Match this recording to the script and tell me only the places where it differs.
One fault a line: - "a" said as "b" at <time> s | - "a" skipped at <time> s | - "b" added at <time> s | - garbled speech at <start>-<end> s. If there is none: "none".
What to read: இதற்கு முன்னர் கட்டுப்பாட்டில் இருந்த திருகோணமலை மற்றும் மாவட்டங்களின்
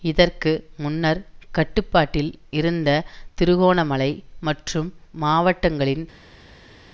none